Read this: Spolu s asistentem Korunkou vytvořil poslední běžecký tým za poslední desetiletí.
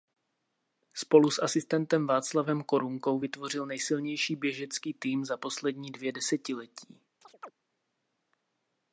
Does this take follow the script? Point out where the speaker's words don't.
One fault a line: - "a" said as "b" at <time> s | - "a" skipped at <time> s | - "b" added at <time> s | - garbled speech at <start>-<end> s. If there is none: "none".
- "Václavem" added at 2.1 s
- "poslední" said as "nejsilnější" at 3.7 s
- "dvě" added at 5.9 s